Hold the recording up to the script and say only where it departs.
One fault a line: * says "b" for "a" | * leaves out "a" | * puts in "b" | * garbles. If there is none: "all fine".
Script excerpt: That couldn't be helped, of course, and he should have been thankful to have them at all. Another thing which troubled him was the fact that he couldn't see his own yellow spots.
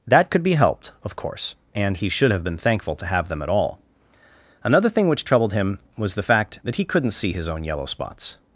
* says "could" for "couldn't"